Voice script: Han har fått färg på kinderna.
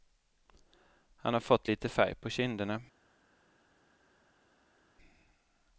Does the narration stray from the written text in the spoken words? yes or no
yes